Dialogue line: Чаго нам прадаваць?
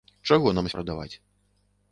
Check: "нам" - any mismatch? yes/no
no